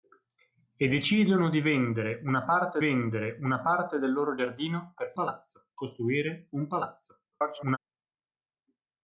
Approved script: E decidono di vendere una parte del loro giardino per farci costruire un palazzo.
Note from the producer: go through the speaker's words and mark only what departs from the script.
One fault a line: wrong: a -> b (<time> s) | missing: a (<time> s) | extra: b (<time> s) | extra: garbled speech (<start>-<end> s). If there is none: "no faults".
extra: vendere una parte (2.8 s)
wrong: farci -> palazzo (5.1 s)
extra: garbled speech (7.3-7.8 s)